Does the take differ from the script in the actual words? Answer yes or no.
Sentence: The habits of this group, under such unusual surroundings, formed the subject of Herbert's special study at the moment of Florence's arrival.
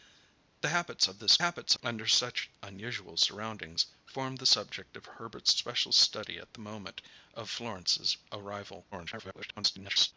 yes